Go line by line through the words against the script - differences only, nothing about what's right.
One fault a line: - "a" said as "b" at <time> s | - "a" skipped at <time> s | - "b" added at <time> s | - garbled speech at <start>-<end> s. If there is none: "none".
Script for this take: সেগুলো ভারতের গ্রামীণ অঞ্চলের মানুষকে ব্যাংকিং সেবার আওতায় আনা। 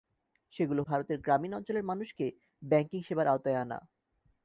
none